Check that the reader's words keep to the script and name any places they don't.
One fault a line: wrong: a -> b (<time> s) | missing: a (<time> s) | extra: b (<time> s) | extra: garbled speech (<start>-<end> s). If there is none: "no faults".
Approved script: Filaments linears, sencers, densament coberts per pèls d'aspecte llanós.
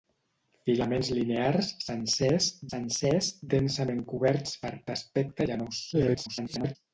extra: sencers (2.7 s)
missing: pèls (4.7 s)
extra: garbled speech (5.9-6.8 s)